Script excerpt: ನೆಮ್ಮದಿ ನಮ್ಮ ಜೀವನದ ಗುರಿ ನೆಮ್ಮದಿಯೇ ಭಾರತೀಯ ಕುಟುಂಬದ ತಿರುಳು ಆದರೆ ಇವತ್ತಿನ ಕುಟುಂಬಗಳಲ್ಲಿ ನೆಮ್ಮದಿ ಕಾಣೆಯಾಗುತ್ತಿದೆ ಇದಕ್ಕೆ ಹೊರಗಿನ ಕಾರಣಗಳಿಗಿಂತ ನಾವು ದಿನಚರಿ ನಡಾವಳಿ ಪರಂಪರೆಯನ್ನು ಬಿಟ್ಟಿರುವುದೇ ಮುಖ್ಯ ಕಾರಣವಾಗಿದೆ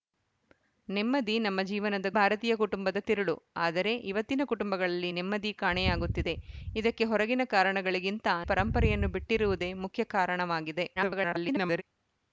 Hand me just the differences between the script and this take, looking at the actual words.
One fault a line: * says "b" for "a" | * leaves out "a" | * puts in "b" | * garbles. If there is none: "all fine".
* leaves out "ಗುರಿ ನೆಮ್ಮದಿಯೇ"
* leaves out "ನಾವು ದಿನಚರಿ ನಡಾವಳಿ"
* garbles